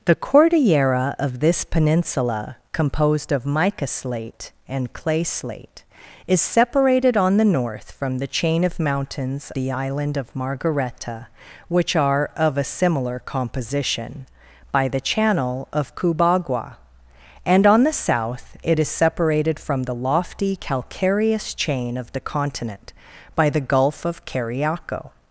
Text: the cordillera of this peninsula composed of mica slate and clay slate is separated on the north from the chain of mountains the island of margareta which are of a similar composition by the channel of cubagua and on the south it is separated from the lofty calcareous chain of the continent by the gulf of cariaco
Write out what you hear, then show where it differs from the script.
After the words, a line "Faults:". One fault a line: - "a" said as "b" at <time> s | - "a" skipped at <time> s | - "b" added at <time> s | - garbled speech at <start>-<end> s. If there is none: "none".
the cordillera of this peninsula composed of mica slate and clay slate is separated on the north from the chain of mountains the island of margareta which are of a similar composition by the channel of cubagua and on the south it is separated from the lofty calcareous chain of the continent by the gulf of cariaco
Faults:
none